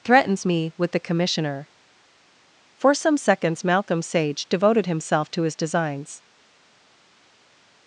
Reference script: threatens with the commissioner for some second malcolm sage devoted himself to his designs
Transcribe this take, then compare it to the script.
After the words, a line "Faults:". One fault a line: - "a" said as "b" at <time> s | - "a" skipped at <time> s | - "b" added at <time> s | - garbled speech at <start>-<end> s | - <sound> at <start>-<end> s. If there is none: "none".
threatens me with the commissioner for some seconds malcolm sage devoted himself to his designs
Faults:
- "me" added at 0.5 s
- "second" said as "seconds" at 3.2 s